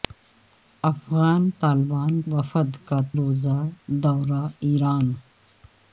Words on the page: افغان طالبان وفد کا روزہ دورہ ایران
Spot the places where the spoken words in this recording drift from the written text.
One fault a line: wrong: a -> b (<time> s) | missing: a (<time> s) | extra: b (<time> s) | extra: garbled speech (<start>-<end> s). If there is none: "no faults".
no faults